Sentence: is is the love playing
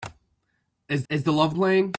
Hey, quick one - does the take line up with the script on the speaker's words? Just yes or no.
yes